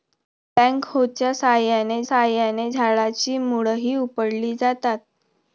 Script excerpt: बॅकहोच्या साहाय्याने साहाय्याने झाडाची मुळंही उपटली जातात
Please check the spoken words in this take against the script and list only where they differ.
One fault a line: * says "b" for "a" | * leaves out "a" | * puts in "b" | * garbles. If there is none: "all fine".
all fine